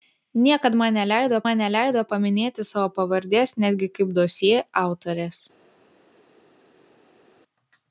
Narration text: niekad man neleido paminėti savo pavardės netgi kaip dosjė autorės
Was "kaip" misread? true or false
false